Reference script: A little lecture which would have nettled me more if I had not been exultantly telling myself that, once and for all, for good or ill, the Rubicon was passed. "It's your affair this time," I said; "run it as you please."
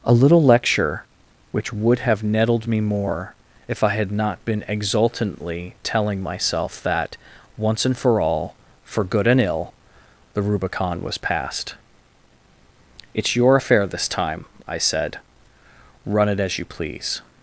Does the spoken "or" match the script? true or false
false